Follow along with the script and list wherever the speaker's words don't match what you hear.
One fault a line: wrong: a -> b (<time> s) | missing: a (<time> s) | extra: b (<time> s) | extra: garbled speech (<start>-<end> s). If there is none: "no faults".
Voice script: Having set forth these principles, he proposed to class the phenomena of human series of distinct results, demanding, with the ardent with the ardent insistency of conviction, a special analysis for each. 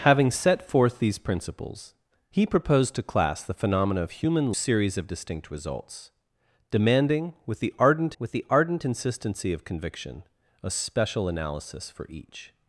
no faults